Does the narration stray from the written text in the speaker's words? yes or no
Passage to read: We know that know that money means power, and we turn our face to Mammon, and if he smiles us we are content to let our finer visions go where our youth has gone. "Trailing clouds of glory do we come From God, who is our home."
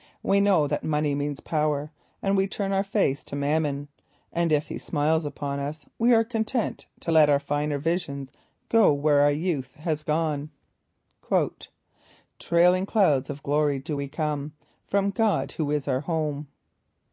yes